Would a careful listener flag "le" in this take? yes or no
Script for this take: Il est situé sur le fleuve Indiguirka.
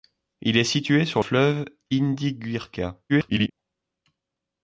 yes